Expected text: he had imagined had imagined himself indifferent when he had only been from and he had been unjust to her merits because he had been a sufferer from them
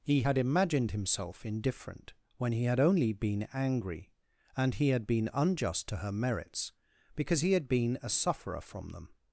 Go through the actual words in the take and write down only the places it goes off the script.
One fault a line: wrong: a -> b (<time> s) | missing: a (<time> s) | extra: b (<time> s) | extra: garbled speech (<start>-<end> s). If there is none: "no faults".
missing: had imagined (0.9 s)
wrong: from -> angry (3.5 s)